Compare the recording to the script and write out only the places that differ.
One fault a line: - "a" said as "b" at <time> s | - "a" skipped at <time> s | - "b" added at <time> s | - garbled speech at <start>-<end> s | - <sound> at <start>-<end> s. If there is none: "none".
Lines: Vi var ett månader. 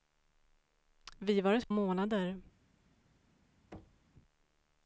- thud at 3.7-4.1 s